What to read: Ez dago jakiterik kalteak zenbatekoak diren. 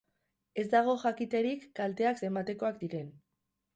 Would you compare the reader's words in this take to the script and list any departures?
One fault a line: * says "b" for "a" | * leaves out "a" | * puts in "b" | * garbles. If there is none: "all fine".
all fine